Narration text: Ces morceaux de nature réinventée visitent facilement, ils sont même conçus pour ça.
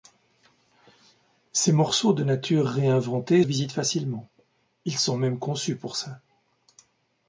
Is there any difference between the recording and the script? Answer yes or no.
no